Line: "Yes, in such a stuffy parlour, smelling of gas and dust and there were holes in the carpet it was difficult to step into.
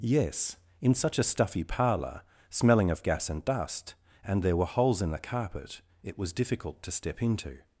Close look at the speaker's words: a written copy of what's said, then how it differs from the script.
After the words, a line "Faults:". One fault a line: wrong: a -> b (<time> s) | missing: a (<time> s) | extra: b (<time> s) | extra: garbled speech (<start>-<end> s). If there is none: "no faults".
"Yes, in such a stuffy parlour, smelling of gas and dust and there were holes in the carpet it was difficult to step into.
Faults:
no faults